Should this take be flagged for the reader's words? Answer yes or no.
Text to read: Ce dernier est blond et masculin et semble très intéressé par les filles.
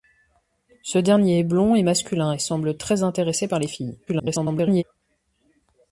yes